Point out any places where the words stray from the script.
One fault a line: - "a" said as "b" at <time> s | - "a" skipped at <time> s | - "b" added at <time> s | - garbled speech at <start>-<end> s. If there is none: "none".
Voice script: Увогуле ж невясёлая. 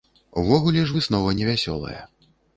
- "выснова" added at 1.0 s